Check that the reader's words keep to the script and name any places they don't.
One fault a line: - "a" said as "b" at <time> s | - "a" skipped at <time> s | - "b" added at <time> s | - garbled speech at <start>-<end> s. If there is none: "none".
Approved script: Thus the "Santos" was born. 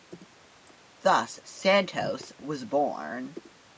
- "the" skipped at 1.4 s